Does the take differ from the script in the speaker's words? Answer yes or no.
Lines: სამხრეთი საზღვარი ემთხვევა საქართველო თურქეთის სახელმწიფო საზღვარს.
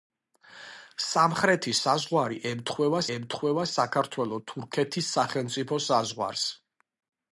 yes